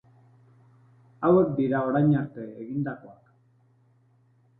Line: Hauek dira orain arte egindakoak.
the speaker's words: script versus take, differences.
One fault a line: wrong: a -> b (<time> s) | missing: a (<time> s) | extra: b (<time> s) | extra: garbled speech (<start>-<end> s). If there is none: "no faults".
no faults